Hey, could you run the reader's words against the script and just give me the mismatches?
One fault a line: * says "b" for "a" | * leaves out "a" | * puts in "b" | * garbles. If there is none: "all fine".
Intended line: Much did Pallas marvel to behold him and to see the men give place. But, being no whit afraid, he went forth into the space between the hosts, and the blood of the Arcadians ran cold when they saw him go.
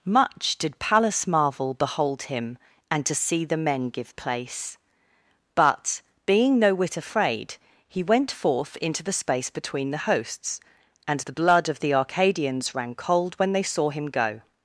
* leaves out "to"